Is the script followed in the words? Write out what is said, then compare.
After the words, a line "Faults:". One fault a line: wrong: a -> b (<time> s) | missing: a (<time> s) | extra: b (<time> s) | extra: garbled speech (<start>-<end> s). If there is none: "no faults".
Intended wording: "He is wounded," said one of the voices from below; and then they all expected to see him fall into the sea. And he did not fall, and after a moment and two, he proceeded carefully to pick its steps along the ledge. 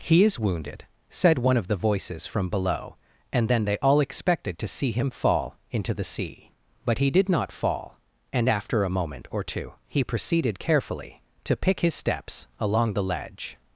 "He is wounded," said one of the voices from below; and then they all expected to see him fall into the sea. But he did not fall, and after a moment or two, he proceeded carefully to pick his steps along the ledge.
Faults:
wrong: And -> But (6.8 s)
wrong: and -> or (9.3 s)
wrong: its -> his (11.8 s)